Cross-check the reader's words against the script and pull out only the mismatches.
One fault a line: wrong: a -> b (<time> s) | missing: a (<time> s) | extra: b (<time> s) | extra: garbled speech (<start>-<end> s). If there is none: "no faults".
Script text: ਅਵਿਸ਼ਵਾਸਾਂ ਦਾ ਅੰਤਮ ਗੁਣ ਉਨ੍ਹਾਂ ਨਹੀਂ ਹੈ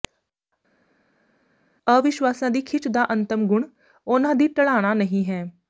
extra: ਦੀ ਖਿੱਚ (2.5 s)
extra: ਦੀ ਢਲਾਣਾ (4.3 s)